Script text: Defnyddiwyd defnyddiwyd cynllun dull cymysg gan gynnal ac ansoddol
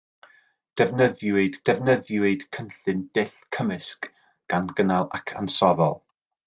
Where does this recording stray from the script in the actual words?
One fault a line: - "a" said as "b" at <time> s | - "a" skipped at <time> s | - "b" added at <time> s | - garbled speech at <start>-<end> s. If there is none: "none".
none